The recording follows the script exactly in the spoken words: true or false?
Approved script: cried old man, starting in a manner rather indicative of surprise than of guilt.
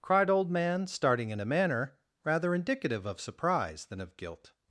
true